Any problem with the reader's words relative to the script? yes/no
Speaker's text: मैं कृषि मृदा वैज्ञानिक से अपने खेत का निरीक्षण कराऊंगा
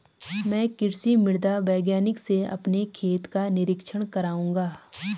no